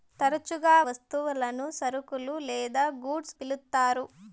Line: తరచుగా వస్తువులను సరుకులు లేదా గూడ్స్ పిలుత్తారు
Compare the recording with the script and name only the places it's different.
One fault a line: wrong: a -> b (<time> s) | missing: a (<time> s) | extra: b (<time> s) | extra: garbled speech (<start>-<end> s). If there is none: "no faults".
no faults